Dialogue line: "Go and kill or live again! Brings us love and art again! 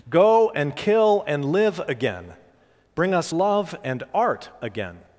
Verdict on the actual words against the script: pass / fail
fail